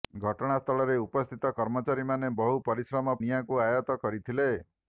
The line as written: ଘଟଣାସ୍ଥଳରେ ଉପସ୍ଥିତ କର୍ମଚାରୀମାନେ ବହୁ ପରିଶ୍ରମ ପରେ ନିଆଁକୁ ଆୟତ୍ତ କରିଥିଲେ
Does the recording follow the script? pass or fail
fail